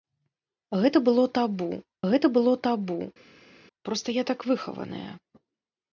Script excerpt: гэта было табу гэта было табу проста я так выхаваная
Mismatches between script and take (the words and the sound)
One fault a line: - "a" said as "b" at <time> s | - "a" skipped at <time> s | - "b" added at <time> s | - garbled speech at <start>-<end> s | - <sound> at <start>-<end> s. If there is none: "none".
none